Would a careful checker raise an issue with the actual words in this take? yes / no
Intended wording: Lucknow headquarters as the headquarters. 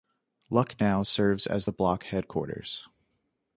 yes